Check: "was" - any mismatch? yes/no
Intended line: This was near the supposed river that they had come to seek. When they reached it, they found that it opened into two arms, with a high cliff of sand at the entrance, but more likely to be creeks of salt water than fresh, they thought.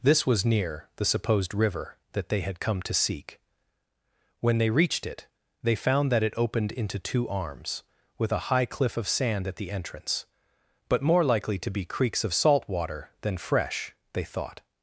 no